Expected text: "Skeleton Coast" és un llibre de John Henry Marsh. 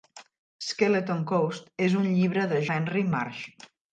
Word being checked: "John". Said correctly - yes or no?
no